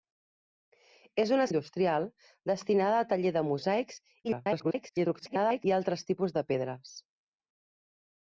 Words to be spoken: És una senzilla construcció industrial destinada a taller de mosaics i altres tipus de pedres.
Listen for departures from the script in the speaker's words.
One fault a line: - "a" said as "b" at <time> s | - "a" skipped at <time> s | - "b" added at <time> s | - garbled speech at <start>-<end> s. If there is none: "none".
- "senzilla construcció" skipped at 1.4 s
- garbled speech at 4.2-5.6 s